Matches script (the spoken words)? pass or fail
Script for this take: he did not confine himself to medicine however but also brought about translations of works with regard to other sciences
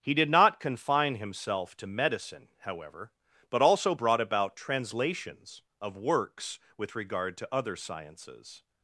pass